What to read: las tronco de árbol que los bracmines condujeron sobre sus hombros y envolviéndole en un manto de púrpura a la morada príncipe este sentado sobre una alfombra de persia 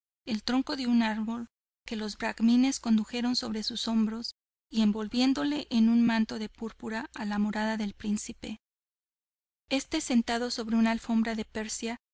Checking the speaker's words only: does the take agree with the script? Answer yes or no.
no